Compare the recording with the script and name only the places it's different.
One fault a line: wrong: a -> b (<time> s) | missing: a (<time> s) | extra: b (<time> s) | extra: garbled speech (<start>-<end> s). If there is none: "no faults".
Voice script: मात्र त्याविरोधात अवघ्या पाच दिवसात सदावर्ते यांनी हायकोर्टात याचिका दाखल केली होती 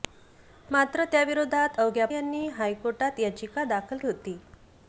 missing: पाच दिवसात सदावर्ते (2.1 s)
missing: केली (4.0 s)